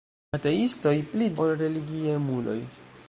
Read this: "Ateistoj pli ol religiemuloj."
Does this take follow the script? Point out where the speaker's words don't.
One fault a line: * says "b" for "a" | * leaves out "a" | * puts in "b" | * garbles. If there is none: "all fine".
all fine